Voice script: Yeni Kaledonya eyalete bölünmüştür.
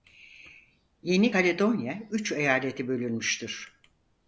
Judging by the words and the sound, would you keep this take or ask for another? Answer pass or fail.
fail